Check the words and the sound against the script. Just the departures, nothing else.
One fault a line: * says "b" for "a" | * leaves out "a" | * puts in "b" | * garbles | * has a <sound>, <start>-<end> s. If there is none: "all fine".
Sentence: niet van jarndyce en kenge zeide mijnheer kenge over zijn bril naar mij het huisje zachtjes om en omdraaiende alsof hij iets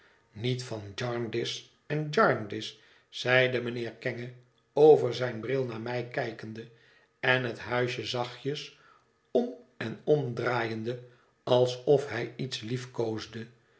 * says "jarndyce" for "kenge"
* puts in "kijkende en"